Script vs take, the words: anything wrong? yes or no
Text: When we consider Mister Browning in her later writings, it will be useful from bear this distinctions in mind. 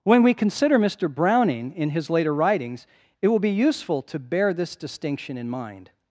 yes